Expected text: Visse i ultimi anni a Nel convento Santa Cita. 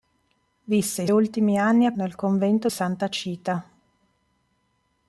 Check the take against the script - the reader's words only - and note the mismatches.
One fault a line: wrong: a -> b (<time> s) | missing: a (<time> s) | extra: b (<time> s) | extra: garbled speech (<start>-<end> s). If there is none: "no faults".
no faults